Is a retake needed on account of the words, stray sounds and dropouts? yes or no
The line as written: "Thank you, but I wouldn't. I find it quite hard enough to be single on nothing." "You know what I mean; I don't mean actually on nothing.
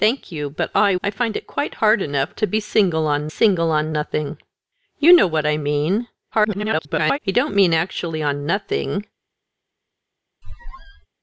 yes